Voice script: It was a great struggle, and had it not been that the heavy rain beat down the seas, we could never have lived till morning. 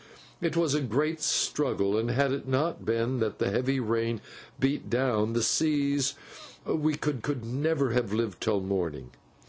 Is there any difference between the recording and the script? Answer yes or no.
yes